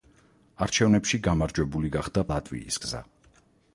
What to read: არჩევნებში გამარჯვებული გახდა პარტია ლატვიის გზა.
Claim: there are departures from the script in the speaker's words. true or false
true